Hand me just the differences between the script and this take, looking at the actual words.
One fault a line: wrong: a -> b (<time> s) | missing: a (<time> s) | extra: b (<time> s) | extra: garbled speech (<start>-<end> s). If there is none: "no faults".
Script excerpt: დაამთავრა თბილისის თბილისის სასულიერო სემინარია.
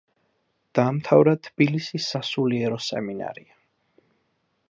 missing: თბილისის (2.1 s)